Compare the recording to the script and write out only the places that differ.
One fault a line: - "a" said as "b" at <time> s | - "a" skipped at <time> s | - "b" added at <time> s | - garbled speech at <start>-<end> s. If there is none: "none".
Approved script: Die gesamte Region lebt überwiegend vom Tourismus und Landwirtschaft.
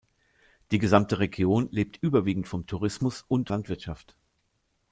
none